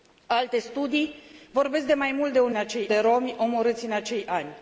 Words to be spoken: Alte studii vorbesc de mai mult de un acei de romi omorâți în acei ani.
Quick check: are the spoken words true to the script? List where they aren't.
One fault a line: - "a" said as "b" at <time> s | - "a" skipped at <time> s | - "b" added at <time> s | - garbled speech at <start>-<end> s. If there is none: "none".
none